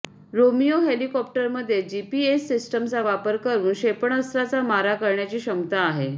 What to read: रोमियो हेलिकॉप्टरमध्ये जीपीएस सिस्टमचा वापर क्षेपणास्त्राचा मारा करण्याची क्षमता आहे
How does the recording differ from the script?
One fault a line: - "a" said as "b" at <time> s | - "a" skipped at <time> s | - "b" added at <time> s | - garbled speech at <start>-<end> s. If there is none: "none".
- "करून" added at 3.4 s